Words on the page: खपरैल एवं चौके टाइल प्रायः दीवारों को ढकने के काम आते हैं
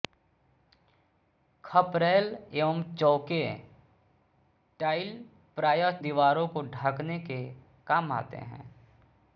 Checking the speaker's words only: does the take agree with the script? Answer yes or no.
yes